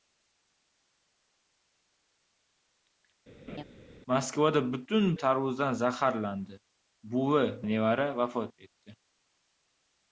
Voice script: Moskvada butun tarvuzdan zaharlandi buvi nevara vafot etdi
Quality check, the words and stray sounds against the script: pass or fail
fail